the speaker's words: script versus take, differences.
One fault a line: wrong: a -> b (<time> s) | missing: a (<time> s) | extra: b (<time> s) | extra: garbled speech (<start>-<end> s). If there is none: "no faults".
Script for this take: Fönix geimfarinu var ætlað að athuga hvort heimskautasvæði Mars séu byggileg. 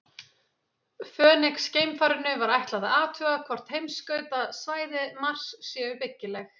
no faults